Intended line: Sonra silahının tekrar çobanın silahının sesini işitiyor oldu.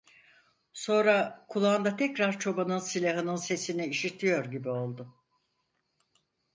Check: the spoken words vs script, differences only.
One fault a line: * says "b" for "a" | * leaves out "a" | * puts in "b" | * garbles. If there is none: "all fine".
* says "kulağında" for "silahının"
* puts in "gibi"